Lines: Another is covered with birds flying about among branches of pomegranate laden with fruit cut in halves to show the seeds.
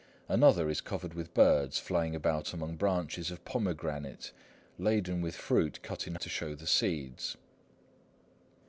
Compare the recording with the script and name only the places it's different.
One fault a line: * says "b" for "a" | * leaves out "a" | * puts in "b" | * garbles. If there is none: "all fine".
* leaves out "halves"